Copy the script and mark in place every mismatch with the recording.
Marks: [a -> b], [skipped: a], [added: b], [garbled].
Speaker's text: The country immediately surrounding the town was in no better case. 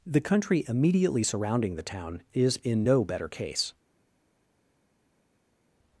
The country immediately surrounding the town [was -> is] in no better case.